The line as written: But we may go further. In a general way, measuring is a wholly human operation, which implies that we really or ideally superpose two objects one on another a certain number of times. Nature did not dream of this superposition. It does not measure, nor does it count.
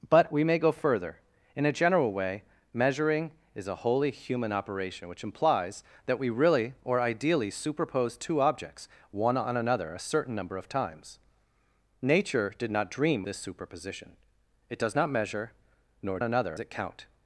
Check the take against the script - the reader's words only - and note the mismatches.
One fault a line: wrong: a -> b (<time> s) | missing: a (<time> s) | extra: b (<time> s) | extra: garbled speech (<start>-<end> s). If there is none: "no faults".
missing: of (13.2 s)
wrong: does -> another (16.2 s)